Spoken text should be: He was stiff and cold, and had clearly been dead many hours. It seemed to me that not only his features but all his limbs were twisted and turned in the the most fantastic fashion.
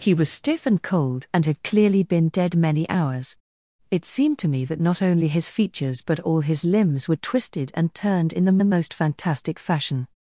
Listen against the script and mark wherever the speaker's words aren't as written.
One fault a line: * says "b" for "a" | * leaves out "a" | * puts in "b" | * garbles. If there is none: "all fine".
all fine